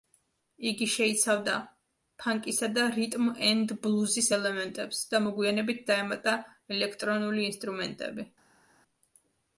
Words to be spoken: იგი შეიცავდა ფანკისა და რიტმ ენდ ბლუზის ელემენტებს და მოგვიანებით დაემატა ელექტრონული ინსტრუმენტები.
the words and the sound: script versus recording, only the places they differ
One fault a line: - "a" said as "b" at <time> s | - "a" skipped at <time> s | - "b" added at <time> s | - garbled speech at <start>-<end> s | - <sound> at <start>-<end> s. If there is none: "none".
none